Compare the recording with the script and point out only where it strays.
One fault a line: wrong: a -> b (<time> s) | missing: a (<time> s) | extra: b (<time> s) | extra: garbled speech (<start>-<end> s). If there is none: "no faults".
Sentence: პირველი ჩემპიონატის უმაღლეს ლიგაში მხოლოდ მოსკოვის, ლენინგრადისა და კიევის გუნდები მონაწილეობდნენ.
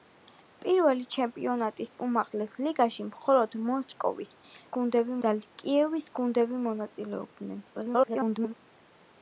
wrong: ლენინგრადისა -> გუნდები (4.8 s)
extra: garbled speech (7.7-8.5 s)